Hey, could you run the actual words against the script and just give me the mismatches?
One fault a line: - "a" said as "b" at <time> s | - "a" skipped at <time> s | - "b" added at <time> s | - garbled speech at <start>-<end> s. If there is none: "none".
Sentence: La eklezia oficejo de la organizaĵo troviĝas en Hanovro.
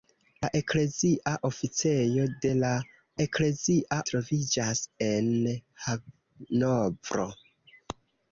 - "organizaĵo" said as "eklezia" at 3.2 s